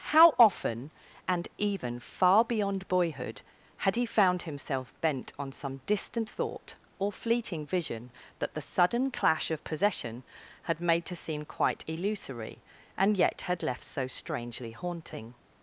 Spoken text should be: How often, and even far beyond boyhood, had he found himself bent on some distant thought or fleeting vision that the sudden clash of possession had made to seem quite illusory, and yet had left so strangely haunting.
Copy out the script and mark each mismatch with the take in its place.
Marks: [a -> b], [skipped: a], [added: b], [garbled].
How often, and even far beyond boyhood, had he found himself bent on some distant thought or fleeting vision that the sudden clash of possession had made to seem quite illusory, and yet had left so strangely haunting.